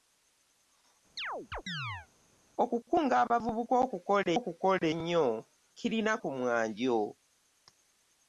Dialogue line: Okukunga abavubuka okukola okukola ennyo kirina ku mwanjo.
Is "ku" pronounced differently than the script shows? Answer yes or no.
no